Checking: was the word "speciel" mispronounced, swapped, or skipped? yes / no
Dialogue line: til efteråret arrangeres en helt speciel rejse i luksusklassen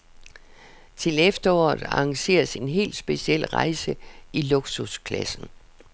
no